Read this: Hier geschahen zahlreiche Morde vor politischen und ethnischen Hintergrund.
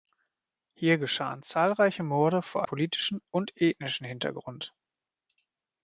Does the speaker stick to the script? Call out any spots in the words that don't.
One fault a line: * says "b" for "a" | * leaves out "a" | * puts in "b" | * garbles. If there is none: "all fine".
all fine